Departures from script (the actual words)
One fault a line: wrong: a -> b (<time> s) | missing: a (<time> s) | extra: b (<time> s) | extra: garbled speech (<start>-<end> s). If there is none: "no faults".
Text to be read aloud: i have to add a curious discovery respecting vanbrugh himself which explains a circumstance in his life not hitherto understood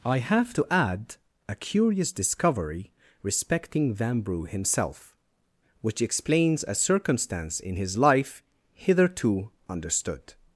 missing: not (8.4 s)